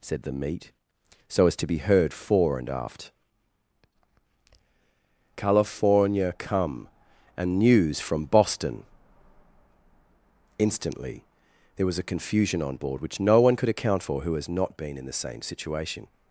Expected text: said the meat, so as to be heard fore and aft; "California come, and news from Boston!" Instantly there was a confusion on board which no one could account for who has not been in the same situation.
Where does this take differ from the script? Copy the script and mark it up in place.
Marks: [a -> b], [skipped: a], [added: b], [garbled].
said the meat, so as to be heard fore and aft; "California come, and news from Boston!" Instantly there was a confusion on board which no one could account for who has not been in the same situation.